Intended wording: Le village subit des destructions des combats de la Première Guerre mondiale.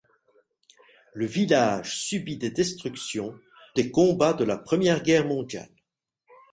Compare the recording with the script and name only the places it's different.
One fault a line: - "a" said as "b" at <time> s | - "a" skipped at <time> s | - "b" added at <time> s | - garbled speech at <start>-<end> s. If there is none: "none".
none